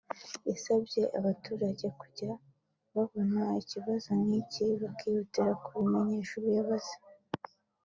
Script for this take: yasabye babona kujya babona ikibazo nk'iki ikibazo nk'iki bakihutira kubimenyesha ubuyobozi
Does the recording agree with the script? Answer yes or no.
no